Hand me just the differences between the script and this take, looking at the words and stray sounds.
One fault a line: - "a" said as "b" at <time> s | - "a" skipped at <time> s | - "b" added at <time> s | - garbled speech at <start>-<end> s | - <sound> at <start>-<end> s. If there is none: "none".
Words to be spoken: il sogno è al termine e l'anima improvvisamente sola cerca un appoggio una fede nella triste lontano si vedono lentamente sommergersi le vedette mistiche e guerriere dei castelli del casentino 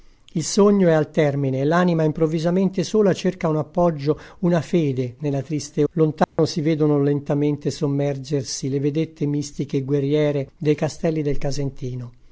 - dropout at 6.2-6.4 s